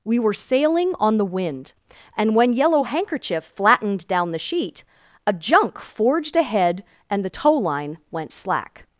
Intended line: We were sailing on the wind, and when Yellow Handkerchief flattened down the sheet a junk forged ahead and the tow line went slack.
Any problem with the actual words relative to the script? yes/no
no